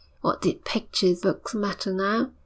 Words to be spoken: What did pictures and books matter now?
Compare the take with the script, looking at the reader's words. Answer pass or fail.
fail